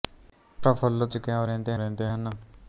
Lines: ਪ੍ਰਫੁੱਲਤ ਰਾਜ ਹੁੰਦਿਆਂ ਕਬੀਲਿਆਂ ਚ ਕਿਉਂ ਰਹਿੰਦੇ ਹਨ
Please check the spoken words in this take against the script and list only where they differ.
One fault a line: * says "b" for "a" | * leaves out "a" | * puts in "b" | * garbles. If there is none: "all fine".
* leaves out "ਰਾਜ ਹੁੰਦਿਆਂ ਕਬੀਲਿਆਂ"
* puts in "ਰਹਿੰਦੇ"